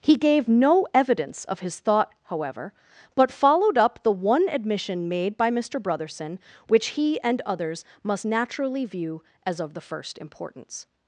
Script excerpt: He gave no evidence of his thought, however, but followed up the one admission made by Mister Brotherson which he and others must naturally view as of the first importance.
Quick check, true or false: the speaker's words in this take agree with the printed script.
true